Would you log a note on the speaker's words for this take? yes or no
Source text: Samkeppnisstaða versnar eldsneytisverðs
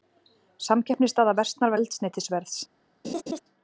no